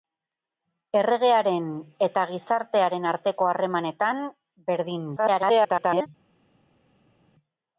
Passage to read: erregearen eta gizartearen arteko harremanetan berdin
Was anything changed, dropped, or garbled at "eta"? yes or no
no